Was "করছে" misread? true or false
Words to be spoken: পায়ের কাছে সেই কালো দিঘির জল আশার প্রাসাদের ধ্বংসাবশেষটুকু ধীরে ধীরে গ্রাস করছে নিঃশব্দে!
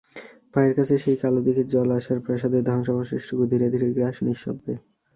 true